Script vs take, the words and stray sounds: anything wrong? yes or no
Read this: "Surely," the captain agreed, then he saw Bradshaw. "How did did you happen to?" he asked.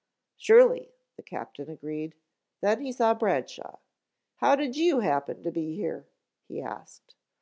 yes